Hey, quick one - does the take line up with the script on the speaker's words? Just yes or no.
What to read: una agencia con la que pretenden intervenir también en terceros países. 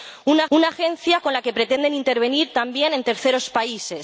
no